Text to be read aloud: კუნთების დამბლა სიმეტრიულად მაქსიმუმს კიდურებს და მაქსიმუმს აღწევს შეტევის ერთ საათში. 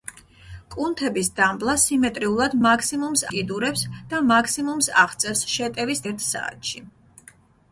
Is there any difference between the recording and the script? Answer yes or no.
no